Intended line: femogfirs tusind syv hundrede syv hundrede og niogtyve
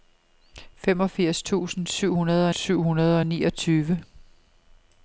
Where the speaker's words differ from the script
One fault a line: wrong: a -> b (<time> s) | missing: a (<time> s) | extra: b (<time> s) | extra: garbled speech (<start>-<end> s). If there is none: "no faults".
no faults